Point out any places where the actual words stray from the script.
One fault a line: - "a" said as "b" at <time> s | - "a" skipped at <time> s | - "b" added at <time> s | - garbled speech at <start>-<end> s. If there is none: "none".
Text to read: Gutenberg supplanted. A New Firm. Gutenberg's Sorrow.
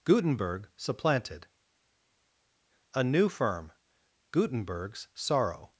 none